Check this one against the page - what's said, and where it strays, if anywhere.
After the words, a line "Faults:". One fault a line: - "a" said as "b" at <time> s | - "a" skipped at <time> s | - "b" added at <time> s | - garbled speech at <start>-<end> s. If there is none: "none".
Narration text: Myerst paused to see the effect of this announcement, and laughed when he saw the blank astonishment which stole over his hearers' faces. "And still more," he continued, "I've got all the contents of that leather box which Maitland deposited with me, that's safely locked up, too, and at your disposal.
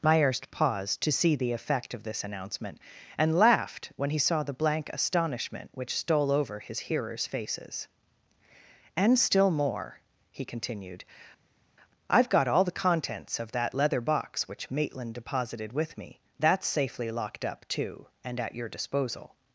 Myerst paused to see the effect of this announcement, and laughed when he saw the blank astonishment which stole over his hearers' faces. "And still more," he continued, "I've got all the contents of that leather box which Maitland deposited with me, that's safely locked up, too, and at your disposal.
Faults:
none